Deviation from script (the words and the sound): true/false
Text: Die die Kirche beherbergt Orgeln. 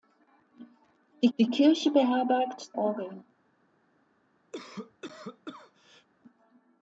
true